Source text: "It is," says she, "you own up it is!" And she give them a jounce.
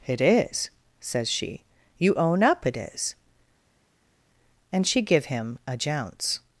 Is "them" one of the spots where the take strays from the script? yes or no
yes